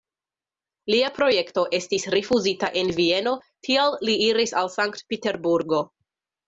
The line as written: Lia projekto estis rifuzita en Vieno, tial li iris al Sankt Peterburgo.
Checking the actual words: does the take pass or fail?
pass